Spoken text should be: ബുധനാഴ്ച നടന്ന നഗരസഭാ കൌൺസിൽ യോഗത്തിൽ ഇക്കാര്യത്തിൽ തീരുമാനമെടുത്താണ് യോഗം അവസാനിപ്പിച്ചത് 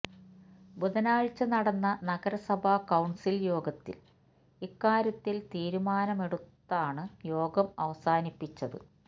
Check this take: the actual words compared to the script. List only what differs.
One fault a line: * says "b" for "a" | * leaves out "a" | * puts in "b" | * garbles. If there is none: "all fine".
all fine